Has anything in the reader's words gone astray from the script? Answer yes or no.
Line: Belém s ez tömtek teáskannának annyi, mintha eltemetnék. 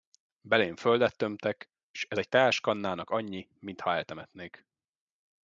yes